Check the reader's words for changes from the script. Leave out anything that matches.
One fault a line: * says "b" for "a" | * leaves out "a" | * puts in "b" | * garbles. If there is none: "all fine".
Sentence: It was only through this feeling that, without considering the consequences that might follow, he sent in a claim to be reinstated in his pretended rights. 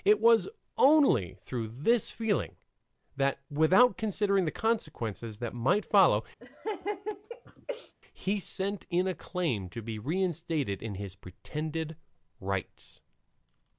all fine